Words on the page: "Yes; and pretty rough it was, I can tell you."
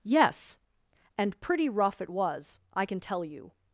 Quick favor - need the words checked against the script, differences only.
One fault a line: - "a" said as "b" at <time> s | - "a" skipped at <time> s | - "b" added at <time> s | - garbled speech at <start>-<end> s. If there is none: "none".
none